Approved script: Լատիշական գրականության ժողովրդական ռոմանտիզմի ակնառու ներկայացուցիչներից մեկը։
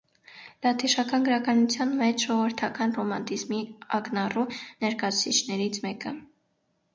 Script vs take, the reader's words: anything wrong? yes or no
yes